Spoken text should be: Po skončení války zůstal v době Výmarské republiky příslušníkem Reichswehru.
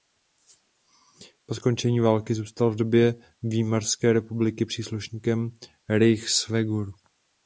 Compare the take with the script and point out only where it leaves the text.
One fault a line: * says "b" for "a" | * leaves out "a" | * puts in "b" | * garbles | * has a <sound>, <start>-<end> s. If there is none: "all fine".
all fine